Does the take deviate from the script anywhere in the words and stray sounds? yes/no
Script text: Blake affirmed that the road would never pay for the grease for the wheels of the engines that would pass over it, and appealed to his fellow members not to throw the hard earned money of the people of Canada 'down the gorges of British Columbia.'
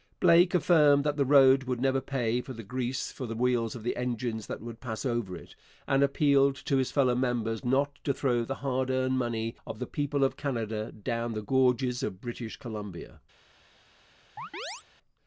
yes